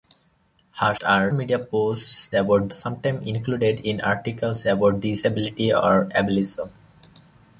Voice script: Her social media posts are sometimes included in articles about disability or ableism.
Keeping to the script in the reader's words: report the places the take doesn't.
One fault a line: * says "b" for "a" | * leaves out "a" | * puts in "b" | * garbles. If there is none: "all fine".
* says "are" for "social"
* says "about" for "are"